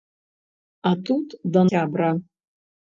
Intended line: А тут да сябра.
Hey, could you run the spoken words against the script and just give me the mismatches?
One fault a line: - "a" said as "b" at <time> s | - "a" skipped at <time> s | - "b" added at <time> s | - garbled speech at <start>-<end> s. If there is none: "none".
none